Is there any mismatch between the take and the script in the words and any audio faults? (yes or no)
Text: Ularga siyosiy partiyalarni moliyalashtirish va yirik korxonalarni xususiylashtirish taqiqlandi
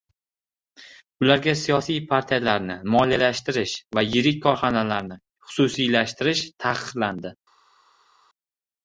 no